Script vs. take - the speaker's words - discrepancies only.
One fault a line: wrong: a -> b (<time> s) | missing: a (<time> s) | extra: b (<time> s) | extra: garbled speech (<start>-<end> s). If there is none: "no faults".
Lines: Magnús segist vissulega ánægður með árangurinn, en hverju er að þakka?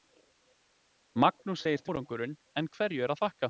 missing: vissulega ánægður með (1.9 s)